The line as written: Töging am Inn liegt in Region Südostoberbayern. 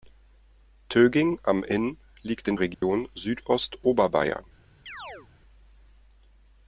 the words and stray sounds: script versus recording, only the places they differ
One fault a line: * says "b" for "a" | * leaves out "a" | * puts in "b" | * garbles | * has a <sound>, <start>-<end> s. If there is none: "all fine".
* has a dropout, 2.7-2.8 s
* has a chirp, 4.9-5.3 s